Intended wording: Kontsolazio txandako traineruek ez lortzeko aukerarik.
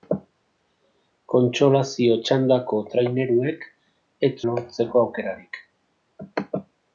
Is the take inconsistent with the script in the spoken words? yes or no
no